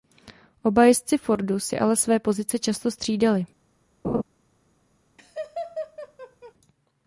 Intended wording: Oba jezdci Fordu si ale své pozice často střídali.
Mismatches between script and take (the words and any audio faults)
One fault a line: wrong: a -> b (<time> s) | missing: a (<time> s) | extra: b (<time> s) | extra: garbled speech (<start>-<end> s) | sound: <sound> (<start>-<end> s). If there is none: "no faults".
sound: laugh (4.0-4.2 s)
sound: laugh (5.2-6.5 s)